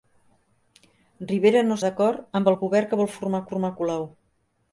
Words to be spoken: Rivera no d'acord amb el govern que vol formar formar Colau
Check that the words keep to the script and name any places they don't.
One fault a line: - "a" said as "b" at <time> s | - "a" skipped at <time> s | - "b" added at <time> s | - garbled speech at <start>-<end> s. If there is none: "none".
none